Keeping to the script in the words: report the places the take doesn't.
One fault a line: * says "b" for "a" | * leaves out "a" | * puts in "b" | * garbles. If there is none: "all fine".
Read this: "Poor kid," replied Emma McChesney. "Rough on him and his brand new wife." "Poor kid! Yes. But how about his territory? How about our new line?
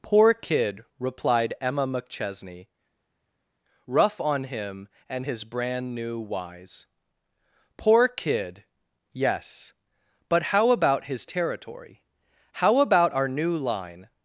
* says "wise" for "wife"